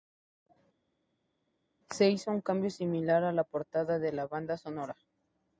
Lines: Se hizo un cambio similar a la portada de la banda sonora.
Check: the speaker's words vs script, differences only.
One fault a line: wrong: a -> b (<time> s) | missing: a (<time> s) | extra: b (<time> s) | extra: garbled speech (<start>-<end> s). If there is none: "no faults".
no faults